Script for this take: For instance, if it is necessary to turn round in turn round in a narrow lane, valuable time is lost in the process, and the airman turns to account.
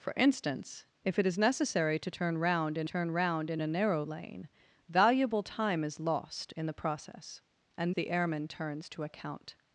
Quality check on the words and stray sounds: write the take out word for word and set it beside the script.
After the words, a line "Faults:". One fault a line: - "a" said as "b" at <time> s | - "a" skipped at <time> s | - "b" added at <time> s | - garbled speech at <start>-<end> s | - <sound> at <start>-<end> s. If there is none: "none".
For instance, if it is necessary to turn round in turn round in a narrow lane, valuable time is lost in the process, and the airman turns to account.
Faults:
none